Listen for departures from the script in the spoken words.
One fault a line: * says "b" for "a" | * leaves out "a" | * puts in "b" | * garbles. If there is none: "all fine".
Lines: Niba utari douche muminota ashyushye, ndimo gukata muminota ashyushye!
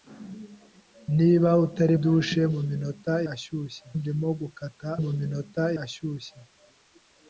all fine